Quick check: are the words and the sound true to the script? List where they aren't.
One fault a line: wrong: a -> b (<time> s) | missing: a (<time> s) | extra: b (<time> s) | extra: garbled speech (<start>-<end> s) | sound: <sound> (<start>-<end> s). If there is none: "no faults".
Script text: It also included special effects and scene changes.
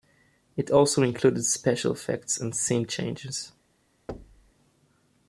sound: thud (4.1-4.5 s)